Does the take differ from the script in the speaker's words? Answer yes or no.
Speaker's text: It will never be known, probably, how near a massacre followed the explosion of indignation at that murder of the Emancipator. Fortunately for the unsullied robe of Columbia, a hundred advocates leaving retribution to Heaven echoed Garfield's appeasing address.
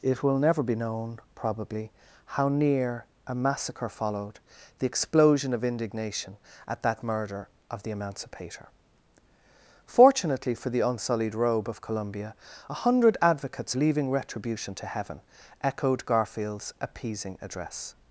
no